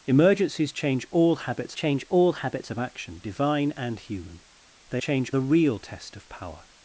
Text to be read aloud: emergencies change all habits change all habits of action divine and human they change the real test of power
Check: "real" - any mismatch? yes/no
no